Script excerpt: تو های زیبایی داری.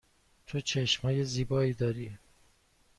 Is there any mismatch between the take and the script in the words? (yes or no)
yes